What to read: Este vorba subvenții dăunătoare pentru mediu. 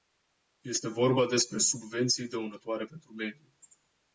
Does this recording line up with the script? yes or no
no